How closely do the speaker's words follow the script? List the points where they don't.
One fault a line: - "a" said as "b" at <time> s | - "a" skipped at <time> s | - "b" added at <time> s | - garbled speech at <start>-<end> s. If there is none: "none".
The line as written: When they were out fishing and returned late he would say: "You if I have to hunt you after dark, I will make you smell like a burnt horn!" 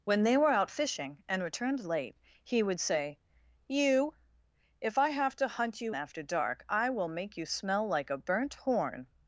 none